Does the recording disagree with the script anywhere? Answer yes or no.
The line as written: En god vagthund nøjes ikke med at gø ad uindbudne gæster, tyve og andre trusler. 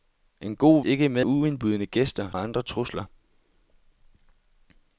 yes